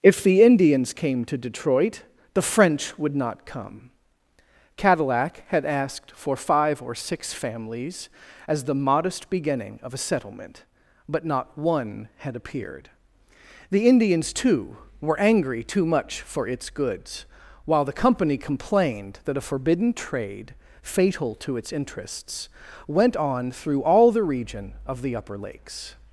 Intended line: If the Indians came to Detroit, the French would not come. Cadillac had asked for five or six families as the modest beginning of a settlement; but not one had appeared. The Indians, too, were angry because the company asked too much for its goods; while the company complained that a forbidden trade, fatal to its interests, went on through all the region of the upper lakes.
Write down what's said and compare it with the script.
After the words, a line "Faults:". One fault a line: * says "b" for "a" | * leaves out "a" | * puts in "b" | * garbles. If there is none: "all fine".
If the Indians came to Detroit, the French would not come. Cadillac had asked for five or six families as the modest beginning of a settlement; but not one had appeared. The Indians, too, were angry too much for its goods; while the company complained that a forbidden trade, fatal to its interests, went on through all the region of the upper lakes.
Faults:
* leaves out "because the company asked"